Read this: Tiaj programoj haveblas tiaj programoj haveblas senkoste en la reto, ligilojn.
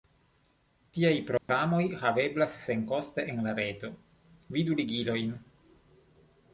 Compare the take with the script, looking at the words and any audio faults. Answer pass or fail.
fail